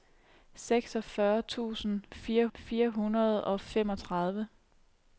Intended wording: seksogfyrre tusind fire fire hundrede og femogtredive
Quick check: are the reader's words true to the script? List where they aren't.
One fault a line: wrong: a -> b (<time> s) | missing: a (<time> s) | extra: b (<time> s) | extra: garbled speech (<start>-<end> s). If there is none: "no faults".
no faults